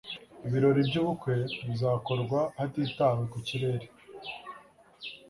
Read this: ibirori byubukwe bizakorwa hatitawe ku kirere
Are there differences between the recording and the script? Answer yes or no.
no